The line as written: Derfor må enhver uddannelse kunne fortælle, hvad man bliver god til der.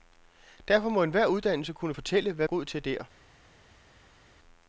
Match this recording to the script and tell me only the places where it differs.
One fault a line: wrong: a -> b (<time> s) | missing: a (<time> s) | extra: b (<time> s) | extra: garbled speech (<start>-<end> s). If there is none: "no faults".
missing: man bliver (2.5 s)